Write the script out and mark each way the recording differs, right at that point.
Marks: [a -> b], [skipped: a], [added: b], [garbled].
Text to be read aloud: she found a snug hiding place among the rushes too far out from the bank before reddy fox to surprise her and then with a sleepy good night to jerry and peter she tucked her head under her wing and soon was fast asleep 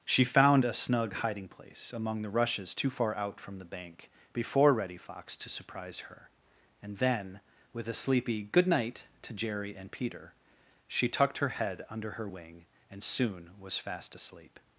she found a snug hiding place among the rushes too far out from the bank before reddy fox to surprise her and then with a sleepy good night to jerry and peter she tucked her head under her wing and soon was fast asleep